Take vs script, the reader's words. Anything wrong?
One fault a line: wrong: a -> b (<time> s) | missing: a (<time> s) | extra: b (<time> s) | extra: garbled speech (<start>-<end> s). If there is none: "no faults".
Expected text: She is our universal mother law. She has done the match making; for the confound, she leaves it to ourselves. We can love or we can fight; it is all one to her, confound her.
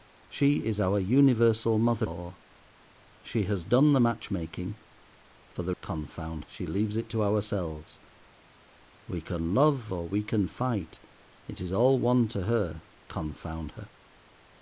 no faults